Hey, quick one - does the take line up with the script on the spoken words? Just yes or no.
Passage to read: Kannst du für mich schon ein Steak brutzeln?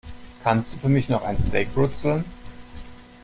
no